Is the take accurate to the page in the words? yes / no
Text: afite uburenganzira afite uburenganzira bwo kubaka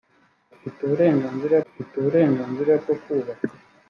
yes